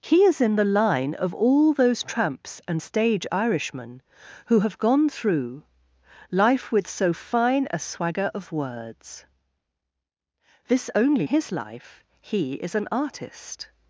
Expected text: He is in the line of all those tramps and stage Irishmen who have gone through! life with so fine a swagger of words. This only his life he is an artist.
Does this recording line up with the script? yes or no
yes